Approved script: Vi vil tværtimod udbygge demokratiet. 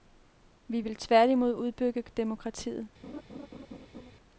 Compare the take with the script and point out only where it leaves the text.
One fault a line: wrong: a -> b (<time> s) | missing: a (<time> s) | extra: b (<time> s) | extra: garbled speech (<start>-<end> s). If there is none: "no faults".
no faults